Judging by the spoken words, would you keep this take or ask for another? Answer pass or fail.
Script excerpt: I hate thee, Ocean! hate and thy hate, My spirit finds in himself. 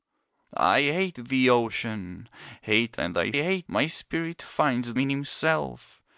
pass